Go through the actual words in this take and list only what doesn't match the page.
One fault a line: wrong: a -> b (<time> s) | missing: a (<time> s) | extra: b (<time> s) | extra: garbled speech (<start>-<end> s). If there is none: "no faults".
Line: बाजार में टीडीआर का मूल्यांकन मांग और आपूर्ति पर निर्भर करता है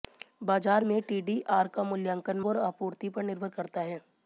missing: मांग (2.4 s)